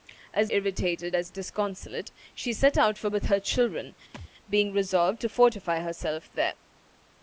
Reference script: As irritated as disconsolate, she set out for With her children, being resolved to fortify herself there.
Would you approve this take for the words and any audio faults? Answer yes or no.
no